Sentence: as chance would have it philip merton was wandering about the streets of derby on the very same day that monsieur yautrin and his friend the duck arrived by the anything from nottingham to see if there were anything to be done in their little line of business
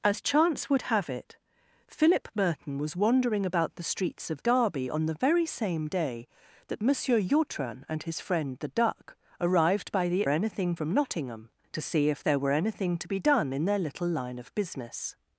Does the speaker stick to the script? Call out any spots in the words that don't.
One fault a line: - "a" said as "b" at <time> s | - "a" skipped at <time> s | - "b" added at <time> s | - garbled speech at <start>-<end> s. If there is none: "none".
none